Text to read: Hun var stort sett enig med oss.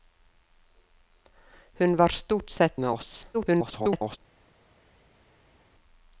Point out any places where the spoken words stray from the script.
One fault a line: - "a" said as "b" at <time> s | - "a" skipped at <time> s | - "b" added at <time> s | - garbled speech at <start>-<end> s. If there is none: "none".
- "enig" skipped at 2.8 s
- garbled speech at 3.3-4.2 s